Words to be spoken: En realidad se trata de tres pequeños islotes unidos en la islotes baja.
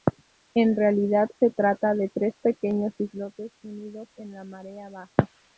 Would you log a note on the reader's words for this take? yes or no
yes